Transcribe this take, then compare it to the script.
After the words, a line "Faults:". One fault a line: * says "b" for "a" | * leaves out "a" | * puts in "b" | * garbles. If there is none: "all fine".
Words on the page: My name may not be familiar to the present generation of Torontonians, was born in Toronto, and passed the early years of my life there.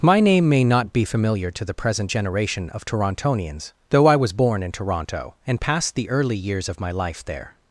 My name may not be familiar to the present generation of Torontonians, though I was born in Toronto, and passed the early years of my life there.
Faults:
* puts in "though I"